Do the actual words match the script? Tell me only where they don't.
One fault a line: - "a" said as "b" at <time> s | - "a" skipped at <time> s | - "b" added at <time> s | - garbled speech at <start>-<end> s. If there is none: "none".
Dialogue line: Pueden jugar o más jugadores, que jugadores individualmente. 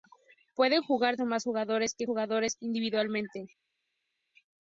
none